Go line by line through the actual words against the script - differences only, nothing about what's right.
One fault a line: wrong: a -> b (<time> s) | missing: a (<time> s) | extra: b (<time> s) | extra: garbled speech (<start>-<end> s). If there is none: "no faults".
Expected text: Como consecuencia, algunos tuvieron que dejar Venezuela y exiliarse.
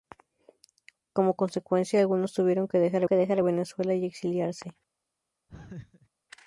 extra: que dejar (3.0 s)